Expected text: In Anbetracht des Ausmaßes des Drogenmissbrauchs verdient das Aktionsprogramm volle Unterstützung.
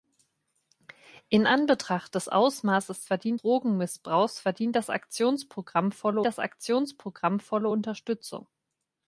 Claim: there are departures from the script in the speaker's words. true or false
true